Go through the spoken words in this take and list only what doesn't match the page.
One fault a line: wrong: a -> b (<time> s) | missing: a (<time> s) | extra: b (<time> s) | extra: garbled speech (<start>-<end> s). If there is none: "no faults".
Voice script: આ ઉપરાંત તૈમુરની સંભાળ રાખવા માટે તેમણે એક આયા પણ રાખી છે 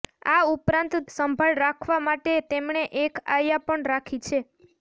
missing: તૈમુરની (0.9 s)